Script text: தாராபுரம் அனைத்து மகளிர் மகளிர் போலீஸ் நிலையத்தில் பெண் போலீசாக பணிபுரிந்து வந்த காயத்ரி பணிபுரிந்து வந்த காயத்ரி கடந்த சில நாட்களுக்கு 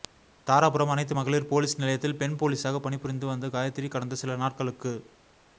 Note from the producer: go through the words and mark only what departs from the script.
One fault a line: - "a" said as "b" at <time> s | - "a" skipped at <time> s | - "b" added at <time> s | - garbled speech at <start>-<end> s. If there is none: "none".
- "மகளிர்" skipped at 1.5 s
- "பணிபுரிந்து வந்த காயத்ரி" skipped at 3.9 s